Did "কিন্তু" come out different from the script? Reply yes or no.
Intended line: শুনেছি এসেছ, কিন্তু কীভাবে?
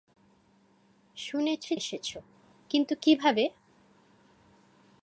no